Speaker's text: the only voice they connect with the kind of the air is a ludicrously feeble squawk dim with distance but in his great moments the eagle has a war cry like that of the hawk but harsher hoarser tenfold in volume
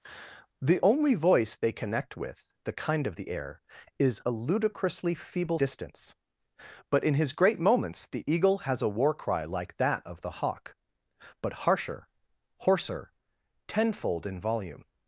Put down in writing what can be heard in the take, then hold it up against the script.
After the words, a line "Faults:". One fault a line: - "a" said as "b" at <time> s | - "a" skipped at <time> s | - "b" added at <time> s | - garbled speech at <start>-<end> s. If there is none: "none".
the only voice they connect with the kind of the air is a ludicrously feeble distance but in his great moments the eagle has a war cry like that of the hawk but harsher hoarser tenfold in volume
Faults:
- "squawk dim with" skipped at 5.6 s